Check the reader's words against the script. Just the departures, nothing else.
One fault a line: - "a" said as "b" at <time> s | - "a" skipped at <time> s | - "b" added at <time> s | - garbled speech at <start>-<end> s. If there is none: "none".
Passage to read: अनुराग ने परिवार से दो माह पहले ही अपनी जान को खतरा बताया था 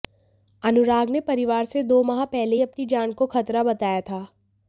none